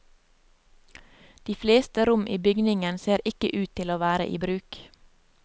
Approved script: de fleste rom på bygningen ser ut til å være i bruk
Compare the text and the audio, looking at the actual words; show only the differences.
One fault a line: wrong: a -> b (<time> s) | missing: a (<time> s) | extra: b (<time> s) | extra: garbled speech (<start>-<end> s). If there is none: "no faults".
wrong: på -> i (2.3 s)
extra: ikke (3.3 s)